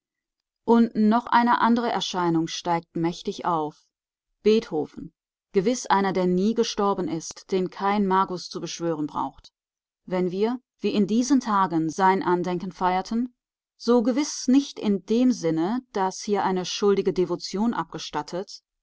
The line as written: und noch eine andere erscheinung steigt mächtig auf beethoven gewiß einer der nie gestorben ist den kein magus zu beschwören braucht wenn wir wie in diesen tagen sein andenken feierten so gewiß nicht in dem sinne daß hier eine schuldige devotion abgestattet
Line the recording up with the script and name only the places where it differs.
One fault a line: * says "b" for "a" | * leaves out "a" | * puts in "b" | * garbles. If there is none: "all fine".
all fine